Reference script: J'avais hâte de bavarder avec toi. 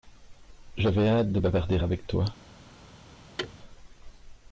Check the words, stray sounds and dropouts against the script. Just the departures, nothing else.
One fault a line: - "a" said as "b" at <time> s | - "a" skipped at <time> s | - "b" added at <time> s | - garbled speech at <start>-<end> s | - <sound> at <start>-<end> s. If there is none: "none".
- thud at 3.4-3.6 s